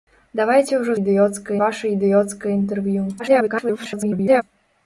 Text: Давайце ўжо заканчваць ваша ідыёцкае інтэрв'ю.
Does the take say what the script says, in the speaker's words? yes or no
no